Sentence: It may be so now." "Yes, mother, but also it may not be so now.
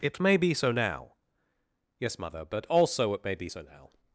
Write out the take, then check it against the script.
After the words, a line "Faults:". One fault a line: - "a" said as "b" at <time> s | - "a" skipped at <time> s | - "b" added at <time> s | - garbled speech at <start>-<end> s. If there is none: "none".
It may be so now." "Yes, mother, but also it may be so now.
Faults:
- "not" skipped at 3.3 s